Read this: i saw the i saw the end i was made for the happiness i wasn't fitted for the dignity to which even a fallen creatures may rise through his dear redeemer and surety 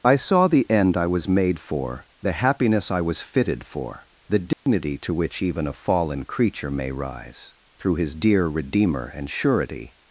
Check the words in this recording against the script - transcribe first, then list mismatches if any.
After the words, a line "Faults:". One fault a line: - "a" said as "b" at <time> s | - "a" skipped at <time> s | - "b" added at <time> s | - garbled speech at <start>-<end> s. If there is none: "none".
i saw the end i was made for the happiness i was fitted for the dignity to which even a fallen creature may rise through his dear redeemer and surety
Faults:
- "i saw the" skipped at 0.7 s
- "wasn't" said as "was" at 3.0 s
- "creatures" said as "creature" at 6.2 s